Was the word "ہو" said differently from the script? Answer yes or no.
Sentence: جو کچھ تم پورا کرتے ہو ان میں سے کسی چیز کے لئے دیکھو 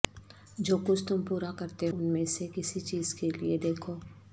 yes